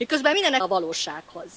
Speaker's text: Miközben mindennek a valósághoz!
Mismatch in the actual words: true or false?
false